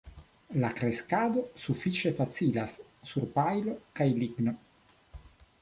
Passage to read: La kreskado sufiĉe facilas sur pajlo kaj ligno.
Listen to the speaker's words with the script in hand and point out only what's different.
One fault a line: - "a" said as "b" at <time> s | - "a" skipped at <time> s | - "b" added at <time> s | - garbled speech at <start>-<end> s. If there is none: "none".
none